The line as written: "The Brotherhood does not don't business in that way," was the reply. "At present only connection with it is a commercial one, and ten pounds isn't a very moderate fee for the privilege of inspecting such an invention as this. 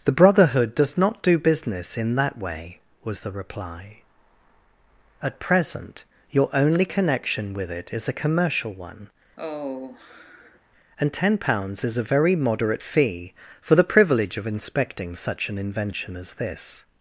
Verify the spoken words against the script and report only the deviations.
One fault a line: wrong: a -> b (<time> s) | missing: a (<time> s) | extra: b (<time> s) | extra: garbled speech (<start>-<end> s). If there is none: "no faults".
wrong: don't -> do (1.2 s)
extra: your (6.3 s)
wrong: isn't -> is (11.8 s)